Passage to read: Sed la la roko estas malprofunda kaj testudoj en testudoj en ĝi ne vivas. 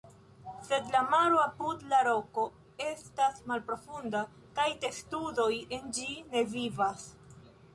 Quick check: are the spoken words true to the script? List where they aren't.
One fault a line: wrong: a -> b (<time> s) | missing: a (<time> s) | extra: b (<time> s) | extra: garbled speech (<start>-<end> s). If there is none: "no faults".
extra: maro apud (1.1 s)
missing: testudoj en (5.9 s)